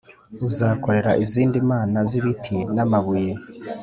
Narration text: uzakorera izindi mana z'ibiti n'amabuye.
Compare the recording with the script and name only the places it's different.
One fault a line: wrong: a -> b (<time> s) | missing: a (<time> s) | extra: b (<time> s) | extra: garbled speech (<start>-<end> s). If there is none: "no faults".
no faults